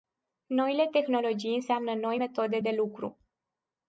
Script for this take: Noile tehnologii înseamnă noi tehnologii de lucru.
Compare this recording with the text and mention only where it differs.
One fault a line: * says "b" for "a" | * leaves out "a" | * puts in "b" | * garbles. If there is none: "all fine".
* says "metode" for "tehnologii"